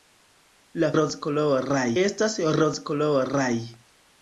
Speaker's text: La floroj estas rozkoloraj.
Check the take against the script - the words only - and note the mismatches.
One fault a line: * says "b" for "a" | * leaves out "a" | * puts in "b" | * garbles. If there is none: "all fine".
* says "rozkoloraj" for "floroj"